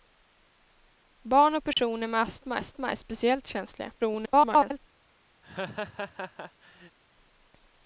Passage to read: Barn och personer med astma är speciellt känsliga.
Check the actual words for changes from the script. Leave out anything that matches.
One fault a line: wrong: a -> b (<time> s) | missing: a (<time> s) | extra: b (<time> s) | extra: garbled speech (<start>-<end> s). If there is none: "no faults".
extra: astma (2.5 s)
extra: garbled speech (4.0-4.8 s)